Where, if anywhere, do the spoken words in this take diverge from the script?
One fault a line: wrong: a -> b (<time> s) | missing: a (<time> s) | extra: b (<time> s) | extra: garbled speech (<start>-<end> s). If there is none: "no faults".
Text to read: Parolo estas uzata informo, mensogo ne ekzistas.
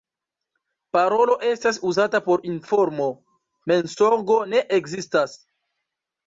extra: por (2.3 s)